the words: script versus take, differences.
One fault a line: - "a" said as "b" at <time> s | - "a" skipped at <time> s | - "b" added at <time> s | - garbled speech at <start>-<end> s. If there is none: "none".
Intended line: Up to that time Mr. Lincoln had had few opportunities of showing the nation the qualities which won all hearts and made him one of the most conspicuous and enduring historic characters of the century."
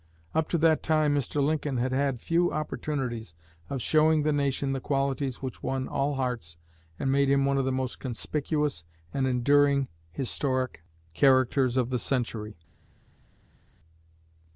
none